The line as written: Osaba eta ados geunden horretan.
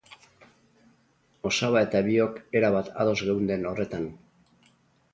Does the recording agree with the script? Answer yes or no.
no